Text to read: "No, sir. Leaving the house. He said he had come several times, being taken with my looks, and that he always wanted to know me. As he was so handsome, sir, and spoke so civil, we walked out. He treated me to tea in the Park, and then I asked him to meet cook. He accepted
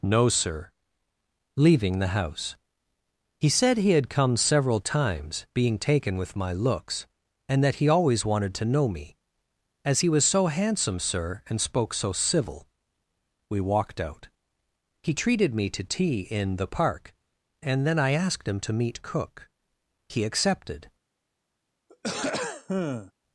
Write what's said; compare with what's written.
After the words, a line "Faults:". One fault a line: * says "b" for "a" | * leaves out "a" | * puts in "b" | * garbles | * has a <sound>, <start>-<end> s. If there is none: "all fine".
"No, sir. Leaving the house. He said he had come several times, being taken with my looks, and that he always wanted to know me. As he was so handsome, sir, and spoke so civil, we walked out. He treated me to tea in the Park, and then I asked him to meet cook. He accepted
Faults:
* has a throat clearing, 21.9-23.1 s